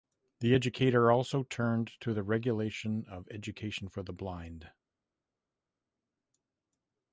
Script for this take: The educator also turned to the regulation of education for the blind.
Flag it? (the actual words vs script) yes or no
no